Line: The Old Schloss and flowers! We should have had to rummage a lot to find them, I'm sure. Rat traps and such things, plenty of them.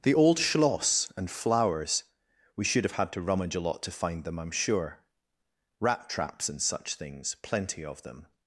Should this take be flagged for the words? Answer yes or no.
no